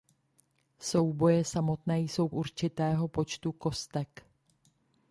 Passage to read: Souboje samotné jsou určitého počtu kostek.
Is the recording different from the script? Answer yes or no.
no